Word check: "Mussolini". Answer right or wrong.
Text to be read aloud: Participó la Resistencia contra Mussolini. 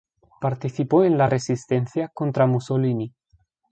right